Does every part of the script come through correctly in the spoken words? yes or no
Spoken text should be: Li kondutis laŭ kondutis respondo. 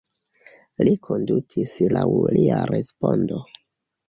no